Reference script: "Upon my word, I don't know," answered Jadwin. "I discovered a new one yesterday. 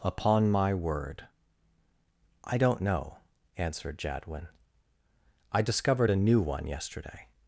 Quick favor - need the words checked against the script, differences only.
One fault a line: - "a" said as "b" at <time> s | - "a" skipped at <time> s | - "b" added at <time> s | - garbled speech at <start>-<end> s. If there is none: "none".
none